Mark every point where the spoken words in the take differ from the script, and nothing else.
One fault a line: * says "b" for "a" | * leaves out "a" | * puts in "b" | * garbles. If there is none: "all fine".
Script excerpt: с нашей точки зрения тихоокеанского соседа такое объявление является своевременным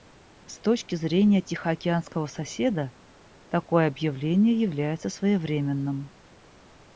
* leaves out "нашей"